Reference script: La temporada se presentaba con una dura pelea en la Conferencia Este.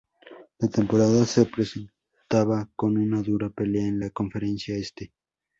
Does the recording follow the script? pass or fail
pass